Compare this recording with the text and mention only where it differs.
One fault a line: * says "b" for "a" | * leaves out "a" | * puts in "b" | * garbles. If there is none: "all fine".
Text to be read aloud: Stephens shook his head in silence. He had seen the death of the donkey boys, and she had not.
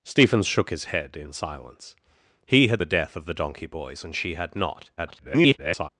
* leaves out "seen"
* garbles